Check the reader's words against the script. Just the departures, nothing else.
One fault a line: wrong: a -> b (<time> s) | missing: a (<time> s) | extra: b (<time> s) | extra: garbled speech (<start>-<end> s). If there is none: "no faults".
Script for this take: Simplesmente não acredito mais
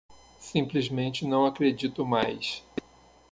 no faults